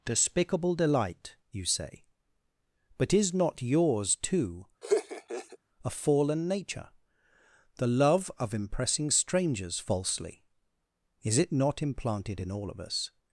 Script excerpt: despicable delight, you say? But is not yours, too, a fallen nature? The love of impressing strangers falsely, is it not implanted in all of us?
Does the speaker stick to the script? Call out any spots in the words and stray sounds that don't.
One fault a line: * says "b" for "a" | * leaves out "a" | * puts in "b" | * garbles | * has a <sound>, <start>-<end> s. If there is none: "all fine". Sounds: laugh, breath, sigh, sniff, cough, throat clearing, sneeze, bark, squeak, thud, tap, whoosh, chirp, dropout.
* has a laugh, 4.8-5.6 s